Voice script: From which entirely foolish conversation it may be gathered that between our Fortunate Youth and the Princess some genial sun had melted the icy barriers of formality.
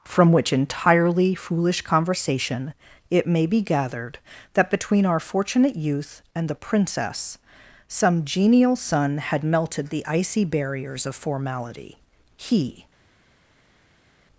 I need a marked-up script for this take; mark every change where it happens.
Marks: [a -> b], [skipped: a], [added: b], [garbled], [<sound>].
From which entirely foolish conversation it may be gathered that between our Fortunate Youth and the Princess some genial sun had melted the icy barriers of formality. [added: He]